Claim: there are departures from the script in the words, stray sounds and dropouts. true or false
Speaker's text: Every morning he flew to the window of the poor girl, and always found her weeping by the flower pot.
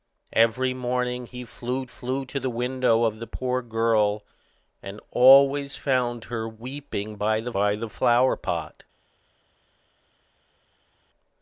true